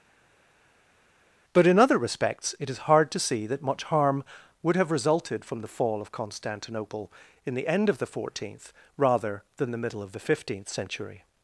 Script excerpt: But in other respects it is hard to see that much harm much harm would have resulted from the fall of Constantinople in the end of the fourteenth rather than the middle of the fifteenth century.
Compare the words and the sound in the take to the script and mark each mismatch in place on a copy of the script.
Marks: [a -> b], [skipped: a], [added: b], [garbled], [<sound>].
But in other respects it is hard to see that much harm [skipped: much harm] would have resulted from the fall of Constantinople in the end of the fourteenth rather than the middle of the fifteenth century.